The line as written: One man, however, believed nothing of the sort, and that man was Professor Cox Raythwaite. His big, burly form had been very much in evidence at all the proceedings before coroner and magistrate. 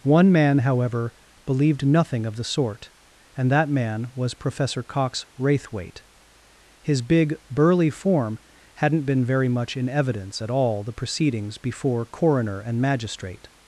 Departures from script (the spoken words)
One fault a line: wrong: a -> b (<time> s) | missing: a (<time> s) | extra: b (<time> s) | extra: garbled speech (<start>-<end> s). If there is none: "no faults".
wrong: had -> hadn't (8.8 s)